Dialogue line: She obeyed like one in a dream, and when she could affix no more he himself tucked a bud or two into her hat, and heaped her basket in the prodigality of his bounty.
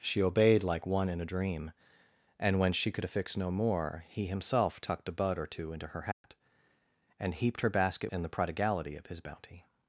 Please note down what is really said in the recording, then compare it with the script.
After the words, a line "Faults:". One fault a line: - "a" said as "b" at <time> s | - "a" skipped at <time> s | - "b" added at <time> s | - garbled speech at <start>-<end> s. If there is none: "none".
She obeyed like one in a dream, and when she could affix no more he himself tucked a bud or two into her hat, and heaped her basket in the prodigality of his bounty.
Faults:
none